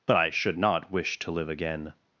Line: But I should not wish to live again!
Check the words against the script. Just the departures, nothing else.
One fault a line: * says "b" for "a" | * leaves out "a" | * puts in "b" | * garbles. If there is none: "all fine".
all fine